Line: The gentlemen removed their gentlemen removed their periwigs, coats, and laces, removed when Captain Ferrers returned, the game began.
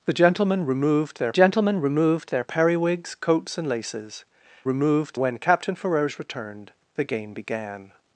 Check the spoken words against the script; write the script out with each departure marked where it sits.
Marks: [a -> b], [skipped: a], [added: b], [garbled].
The gentlemen removed their gentlemen removed their periwigs, coats, and laces, removed when Captain Ferrers returned, the game began.